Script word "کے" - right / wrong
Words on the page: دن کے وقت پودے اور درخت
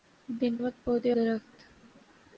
wrong